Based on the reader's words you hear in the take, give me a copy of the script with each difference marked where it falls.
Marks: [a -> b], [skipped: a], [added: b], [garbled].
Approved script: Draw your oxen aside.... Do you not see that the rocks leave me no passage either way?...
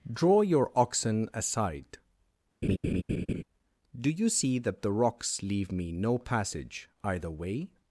Draw your oxen aside.... Do you [skipped: not] see that the rocks leave me no passage either way?...